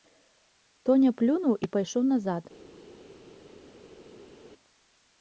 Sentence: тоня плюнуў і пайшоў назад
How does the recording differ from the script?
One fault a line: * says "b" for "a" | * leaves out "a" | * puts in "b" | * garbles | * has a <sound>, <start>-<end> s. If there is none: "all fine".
all fine